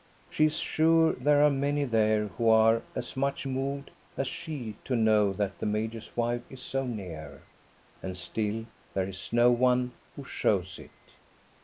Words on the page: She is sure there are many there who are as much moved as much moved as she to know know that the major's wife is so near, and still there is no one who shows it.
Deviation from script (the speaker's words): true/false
true